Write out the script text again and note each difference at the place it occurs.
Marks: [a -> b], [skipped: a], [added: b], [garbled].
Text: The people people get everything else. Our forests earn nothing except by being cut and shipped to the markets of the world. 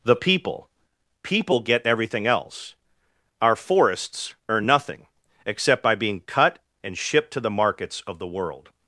The people people get everything else. Our forests earn nothing except by being cut and shipped to the markets of the world.